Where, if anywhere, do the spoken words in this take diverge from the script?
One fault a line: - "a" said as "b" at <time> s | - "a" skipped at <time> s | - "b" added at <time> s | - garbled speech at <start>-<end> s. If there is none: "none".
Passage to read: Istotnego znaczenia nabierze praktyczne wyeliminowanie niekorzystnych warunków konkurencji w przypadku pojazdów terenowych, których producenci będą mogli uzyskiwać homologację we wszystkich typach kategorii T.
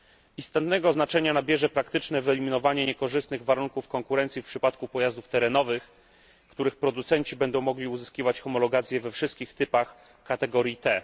none